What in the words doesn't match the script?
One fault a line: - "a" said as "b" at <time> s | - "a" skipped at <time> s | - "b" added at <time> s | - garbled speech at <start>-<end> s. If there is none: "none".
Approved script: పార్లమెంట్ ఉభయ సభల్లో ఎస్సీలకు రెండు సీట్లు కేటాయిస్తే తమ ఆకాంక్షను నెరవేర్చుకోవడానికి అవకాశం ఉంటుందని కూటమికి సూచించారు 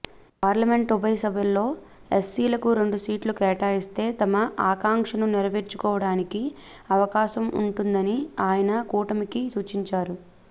- "ఆయన" added at 8.5 s